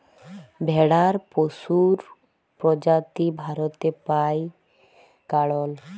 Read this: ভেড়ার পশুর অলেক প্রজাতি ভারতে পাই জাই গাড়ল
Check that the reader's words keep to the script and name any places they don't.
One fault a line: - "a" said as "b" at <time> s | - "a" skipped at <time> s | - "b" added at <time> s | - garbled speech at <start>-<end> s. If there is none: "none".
- "অলেক" skipped at 2.0 s
- "জাই" skipped at 4.4 s